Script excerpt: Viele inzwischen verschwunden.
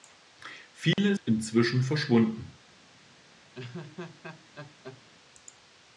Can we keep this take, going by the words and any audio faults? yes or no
no